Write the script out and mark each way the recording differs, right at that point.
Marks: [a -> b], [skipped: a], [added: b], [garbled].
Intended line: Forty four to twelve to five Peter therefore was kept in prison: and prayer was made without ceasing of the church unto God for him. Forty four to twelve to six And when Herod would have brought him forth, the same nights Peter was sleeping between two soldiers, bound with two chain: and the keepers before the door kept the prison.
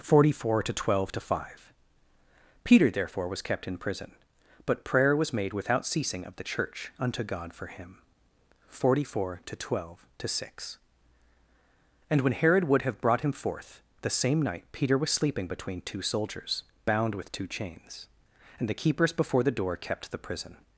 Forty four to twelve to five Peter therefore was kept in prison: [and -> but] prayer was made without ceasing of the church unto God for him. Forty four to twelve to six And when Herod would have brought him forth, the same [nights -> night] Peter was sleeping between two soldiers, bound with two [chain: -> chains] and the keepers before the door kept the prison.